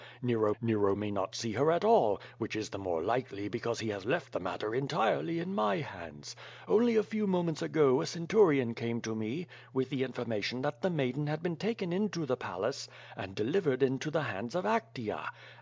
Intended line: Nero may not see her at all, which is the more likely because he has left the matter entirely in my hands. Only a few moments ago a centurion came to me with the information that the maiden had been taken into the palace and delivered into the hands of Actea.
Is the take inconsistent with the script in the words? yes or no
yes